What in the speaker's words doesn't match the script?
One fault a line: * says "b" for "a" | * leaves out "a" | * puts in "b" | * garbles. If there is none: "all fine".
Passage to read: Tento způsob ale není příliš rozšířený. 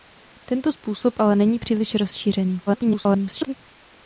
* garbles